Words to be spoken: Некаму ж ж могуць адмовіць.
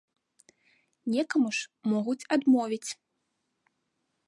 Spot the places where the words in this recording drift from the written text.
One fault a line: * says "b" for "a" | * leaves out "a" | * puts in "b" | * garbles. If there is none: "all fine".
* leaves out "ж"